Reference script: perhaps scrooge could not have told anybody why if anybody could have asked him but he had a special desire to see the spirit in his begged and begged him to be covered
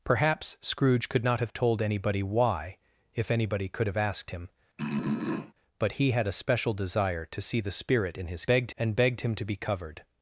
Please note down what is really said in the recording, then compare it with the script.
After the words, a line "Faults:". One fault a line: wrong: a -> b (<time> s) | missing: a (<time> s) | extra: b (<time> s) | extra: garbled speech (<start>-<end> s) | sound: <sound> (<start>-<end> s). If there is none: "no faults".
perhaps scrooge could not have told anybody why if anybody could have asked him but he had a special desire to see the spirit in his begged and begged him to be covered
Faults:
sound: throat clearing (4.8-5.5 s)